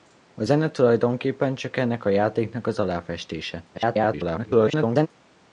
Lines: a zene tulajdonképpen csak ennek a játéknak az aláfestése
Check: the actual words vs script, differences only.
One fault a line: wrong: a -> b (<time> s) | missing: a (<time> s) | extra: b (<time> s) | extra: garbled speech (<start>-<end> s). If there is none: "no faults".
extra: garbled speech (3.7-5.1 s)